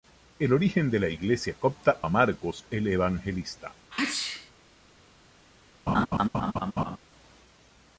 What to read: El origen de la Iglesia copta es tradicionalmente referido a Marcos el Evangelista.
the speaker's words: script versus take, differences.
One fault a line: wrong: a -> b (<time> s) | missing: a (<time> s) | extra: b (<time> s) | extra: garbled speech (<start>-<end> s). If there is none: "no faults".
missing: es tradicionalmente referido (2.0 s)